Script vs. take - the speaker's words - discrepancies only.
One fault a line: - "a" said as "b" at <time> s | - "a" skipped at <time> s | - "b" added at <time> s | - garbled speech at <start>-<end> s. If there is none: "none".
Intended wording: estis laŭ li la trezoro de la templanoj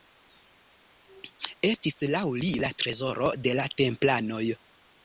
none